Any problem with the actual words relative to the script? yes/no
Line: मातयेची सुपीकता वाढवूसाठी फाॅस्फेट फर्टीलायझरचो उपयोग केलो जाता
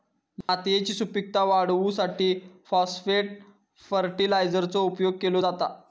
no